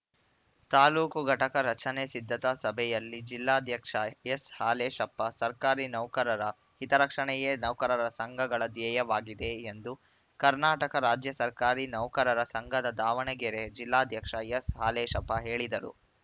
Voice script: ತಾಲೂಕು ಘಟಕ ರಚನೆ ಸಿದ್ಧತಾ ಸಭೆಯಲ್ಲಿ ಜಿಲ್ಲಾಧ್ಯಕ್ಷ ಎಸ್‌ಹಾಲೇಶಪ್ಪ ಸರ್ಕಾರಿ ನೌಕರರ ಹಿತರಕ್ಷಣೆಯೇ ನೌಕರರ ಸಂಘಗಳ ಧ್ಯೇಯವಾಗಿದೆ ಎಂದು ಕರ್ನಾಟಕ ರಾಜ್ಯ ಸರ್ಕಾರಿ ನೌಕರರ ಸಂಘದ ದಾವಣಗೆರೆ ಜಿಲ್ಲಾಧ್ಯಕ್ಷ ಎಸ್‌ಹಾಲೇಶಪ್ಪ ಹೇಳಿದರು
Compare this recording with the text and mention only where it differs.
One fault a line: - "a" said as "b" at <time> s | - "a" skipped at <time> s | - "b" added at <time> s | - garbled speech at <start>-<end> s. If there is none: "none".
none